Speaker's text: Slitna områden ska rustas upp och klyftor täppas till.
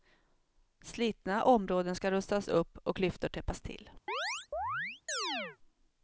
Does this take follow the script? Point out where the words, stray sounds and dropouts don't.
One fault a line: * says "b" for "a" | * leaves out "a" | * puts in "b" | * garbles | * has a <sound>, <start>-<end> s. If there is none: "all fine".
* has a chirp, 4.1-5.6 s